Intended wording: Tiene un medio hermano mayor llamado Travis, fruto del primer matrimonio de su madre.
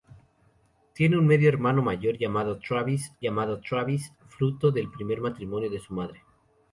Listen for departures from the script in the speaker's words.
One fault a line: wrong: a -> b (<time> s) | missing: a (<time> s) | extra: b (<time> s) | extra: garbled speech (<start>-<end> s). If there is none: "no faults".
extra: llamado Travis (3.2 s)